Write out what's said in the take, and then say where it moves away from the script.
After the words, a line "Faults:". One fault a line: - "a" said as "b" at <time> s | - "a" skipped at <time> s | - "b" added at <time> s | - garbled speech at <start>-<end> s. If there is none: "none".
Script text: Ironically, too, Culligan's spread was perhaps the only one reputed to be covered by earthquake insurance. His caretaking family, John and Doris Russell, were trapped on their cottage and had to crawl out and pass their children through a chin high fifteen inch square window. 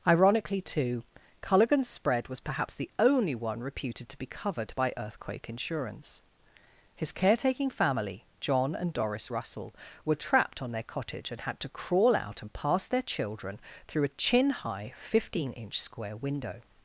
Ironically, too, Culligan's spread was perhaps the only one reputed to be covered by earthquake insurance. His caretaking family, John and Doris Russell, were trapped on their cottage and had to crawl out and pass their children through a chin high fifteen inch square window.
Faults:
none